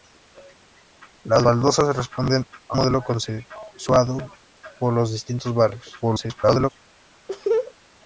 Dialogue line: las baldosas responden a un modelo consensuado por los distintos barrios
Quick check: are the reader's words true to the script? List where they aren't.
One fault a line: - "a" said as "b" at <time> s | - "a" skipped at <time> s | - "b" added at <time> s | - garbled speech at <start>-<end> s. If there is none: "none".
- "un" skipped at 2.8 s
- garbled speech at 6.0-6.7 s